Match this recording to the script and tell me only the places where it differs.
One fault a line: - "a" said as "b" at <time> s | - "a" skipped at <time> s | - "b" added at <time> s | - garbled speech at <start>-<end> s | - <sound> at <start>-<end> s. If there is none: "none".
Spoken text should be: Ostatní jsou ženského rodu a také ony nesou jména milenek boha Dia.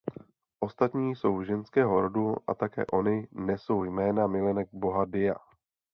none